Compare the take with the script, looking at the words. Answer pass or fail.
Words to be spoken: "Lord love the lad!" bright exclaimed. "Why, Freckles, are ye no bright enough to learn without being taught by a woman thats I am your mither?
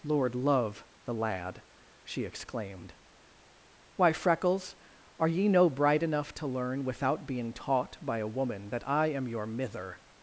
fail